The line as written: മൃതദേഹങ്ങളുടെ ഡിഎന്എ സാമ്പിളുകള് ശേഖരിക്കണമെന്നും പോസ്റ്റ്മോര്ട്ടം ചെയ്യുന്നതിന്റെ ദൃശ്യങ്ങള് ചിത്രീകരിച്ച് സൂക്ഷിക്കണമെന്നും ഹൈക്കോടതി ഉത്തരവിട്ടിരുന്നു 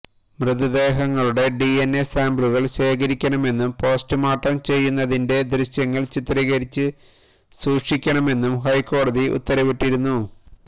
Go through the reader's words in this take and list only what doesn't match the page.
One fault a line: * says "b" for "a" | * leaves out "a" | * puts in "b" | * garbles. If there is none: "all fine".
all fine